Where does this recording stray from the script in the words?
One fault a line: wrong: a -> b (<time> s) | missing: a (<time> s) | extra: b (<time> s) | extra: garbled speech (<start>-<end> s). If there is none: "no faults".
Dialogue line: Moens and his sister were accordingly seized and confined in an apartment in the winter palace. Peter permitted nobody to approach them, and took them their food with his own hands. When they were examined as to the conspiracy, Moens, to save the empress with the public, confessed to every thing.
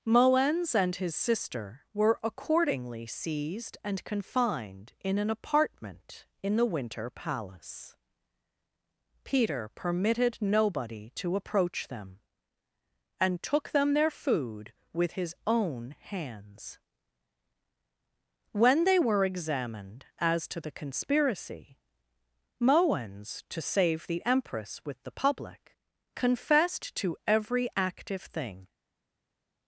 extra: active (27.8 s)